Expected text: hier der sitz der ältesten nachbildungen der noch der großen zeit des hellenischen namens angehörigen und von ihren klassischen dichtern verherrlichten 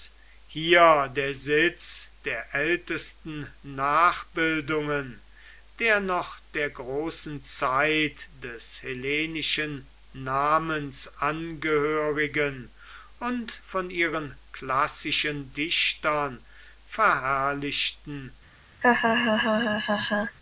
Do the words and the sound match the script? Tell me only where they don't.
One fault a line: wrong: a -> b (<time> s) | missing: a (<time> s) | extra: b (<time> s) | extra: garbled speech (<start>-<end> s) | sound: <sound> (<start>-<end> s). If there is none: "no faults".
sound: laugh (18.8-20.4 s)